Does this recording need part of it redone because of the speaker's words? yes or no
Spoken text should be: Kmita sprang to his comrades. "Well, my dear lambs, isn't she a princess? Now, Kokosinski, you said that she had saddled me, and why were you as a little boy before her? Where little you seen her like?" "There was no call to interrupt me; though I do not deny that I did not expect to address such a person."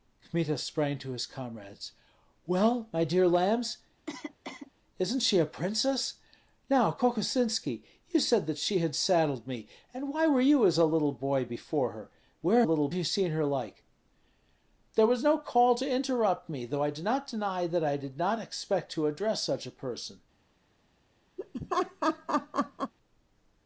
no